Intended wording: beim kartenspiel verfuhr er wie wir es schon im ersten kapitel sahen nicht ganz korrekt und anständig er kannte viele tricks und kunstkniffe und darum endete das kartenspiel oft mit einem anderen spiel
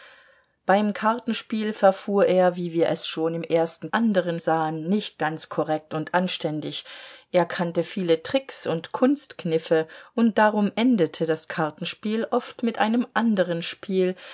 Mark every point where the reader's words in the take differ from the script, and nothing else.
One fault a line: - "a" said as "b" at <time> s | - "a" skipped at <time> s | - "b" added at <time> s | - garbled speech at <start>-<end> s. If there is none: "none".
- "kapitel" said as "anderen" at 3.9 s